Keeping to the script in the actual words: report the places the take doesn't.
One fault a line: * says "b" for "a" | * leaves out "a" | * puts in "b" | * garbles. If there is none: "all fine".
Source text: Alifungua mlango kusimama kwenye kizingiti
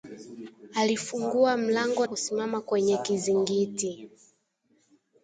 all fine